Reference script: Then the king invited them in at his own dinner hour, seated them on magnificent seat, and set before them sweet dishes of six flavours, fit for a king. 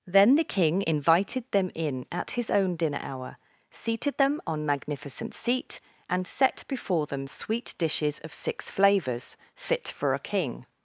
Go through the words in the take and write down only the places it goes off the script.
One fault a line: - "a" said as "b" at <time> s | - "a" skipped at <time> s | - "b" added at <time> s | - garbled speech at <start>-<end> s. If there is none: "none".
none